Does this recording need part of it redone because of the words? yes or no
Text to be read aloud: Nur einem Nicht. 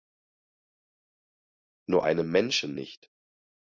yes